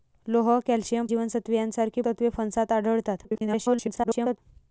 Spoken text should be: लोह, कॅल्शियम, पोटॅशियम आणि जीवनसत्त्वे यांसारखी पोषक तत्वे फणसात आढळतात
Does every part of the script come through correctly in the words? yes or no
no